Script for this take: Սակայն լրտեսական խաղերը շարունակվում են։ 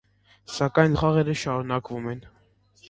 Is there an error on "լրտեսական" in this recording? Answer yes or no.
yes